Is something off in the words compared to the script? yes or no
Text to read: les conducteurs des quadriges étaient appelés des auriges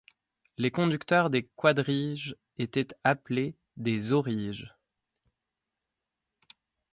no